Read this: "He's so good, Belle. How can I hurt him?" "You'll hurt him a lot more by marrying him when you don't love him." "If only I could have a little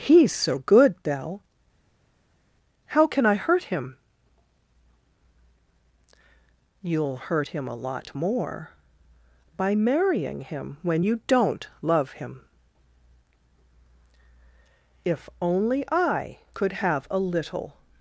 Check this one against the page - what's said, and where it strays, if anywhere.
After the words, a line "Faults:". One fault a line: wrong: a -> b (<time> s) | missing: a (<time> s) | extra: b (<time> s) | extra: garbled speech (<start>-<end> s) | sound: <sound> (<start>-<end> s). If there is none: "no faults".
"He's so good, Belle. How can I hurt him?" "You'll hurt him a lot more by marrying him when you don't love him." "If only I could have a little
Faults:
no faults